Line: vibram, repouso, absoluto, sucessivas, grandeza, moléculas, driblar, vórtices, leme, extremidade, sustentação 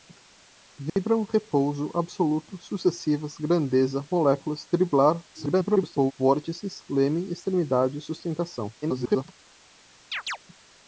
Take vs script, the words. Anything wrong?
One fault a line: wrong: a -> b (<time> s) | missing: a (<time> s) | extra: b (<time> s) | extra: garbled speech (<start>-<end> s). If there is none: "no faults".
extra: garbled speech (5.3-6.1 s)
extra: garbled speech (8.8-9.2 s)